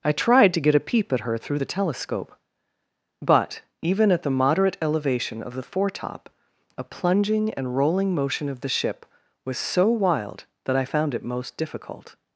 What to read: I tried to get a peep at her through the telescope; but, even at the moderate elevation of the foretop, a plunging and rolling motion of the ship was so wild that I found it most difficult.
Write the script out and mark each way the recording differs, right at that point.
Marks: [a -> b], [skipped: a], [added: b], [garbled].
I tried to get a peep at her through the telescope; but, even at the moderate elevation of the foretop, a plunging and rolling motion of the ship was so wild that I found it most difficult.